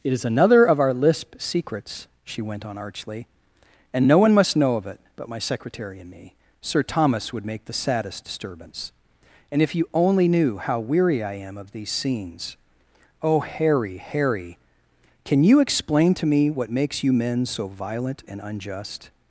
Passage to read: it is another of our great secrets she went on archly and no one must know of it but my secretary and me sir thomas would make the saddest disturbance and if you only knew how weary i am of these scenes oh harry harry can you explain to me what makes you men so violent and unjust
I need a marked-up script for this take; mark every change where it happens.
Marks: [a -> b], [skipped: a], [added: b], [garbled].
it is another of our [great -> lisp] secrets she went on archly and no one must know of it but my secretary and me sir thomas would make the saddest disturbance and if you only knew how weary i am of these scenes oh harry harry can you explain to me what makes you men so violent and unjust